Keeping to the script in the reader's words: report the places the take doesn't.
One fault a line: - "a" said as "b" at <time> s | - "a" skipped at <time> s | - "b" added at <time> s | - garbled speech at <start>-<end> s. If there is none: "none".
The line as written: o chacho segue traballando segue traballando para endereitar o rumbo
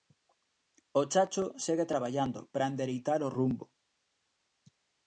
- "segue traballando" skipped at 2.4 s